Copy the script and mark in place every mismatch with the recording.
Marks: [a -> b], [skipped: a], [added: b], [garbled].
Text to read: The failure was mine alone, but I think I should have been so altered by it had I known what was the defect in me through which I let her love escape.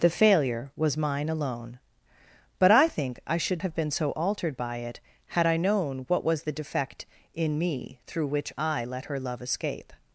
The failure was mine alone, but I think I should have been so altered by it had I known what was the defect in me through which I let her love escape.